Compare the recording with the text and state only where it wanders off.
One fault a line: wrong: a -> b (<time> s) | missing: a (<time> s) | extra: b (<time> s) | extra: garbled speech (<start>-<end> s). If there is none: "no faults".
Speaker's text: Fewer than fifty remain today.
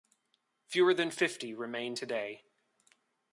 no faults